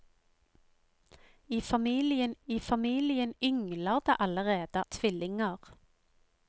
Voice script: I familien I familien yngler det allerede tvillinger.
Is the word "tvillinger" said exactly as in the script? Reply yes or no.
yes